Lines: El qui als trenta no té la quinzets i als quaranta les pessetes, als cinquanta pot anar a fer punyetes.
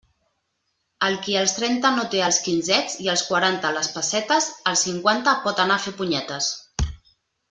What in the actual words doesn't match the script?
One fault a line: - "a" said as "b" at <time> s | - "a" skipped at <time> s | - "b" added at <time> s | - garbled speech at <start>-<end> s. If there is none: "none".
- "la" said as "els" at 2.3 s